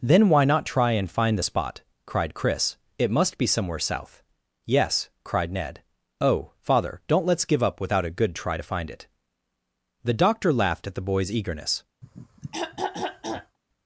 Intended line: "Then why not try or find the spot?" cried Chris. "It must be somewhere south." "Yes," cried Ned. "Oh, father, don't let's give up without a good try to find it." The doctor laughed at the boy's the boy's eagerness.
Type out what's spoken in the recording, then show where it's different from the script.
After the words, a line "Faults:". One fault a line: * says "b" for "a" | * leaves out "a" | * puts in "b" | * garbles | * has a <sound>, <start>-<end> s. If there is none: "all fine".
"Then why not try and find the spot?" cried Chris. "It must be somewhere south." "Yes," cried Ned. "Oh, father, don't let's give up without a good try to find it." The doctor laughed at the boy's eagerness.
Faults:
* says "and" for "or"
* leaves out "the boy's"
* has a throat clearing, 12.0-13.6 s